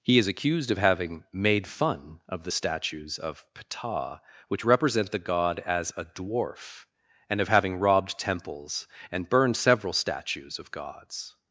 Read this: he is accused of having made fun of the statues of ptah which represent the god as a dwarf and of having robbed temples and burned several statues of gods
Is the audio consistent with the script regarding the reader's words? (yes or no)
yes